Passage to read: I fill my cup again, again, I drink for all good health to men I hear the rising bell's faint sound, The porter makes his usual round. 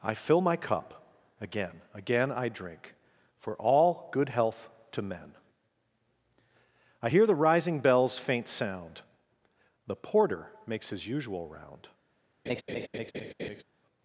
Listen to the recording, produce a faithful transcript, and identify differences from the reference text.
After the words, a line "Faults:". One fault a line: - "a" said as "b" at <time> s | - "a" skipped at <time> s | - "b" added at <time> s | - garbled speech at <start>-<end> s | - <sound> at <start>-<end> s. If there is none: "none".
I fill my cup again, again, I drink for all good health to men I hear the rising bell's faint sound, The porter makes his usual round.
Faults:
- laugh at 12.5-13.6 s